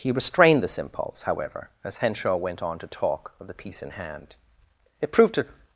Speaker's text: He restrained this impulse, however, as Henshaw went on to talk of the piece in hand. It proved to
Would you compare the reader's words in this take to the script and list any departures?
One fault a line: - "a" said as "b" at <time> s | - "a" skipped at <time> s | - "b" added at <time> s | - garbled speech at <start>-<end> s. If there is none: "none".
none